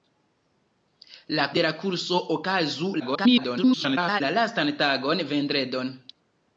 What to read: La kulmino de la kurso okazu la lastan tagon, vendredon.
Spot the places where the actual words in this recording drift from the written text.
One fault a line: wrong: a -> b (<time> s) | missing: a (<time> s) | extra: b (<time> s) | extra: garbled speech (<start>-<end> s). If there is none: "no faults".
missing: kulmino (1.4 s)
extra: garbled speech (3.0-4.2 s)